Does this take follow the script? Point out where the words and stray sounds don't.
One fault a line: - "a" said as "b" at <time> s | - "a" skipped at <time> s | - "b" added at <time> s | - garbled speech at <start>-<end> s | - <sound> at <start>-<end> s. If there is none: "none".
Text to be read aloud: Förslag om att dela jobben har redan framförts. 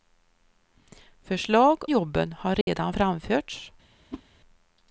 - "om att dela" skipped at 1.9 s
- dropout at 2.6-2.7 s
- whoosh at 4.1-4.2 s